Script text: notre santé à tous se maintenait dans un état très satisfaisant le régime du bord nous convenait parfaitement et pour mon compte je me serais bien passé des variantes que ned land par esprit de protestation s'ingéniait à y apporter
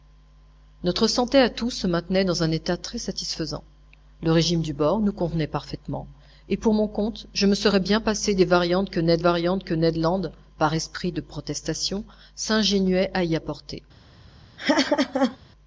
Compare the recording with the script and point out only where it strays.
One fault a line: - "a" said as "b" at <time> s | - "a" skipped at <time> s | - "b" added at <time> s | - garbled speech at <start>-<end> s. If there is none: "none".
- "variantes que ned" added at 9.2 s